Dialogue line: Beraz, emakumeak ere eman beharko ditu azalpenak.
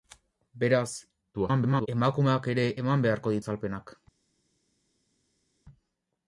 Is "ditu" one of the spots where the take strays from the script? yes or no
yes